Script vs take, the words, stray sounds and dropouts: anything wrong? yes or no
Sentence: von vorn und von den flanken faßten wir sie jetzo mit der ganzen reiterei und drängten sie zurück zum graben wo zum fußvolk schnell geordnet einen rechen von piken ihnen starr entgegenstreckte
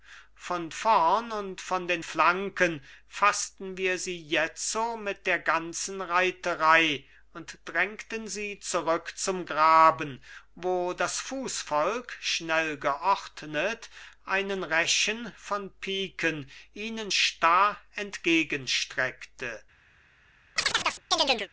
yes